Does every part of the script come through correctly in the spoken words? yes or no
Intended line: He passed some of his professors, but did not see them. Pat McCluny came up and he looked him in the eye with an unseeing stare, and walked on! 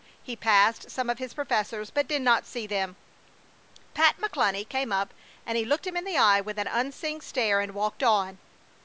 yes